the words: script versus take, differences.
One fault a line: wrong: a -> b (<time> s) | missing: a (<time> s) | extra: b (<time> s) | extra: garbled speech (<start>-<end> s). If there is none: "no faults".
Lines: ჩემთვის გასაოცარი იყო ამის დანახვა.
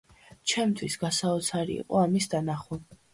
no faults